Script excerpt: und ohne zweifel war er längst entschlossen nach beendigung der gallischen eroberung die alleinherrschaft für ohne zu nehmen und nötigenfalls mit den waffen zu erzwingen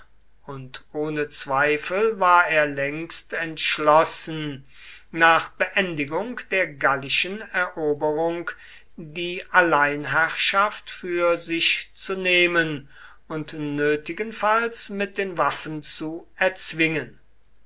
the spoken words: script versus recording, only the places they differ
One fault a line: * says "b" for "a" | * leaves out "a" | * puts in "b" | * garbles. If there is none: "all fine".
* says "sich" for "ohne"